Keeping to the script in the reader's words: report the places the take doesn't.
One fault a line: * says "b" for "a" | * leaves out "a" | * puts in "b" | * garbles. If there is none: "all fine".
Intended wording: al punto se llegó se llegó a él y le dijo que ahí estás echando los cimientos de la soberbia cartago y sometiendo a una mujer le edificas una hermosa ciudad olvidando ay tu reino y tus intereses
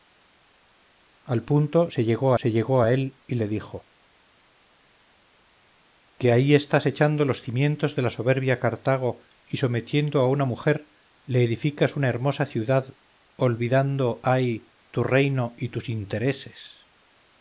all fine